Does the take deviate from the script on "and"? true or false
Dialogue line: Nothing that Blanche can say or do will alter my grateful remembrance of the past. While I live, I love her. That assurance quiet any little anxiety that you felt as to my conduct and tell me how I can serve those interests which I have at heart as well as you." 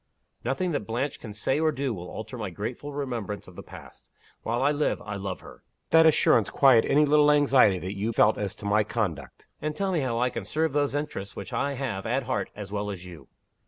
false